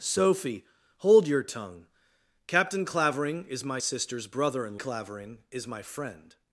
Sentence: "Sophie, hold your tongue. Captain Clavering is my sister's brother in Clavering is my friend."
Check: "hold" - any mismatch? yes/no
no